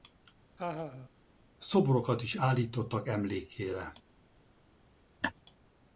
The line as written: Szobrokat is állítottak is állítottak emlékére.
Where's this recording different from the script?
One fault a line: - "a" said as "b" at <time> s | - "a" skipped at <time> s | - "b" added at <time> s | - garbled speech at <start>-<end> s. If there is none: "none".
- "is állítottak" skipped at 3.1 s